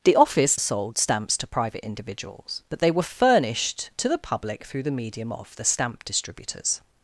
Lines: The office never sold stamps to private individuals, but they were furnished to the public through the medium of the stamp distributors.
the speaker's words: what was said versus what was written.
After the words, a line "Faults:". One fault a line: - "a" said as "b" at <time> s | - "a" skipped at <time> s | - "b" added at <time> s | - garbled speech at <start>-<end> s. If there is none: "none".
The office sold stamps to private individuals, but they were furnished to the public through the medium of the stamp distributors.
Faults:
- "never" skipped at 0.6 s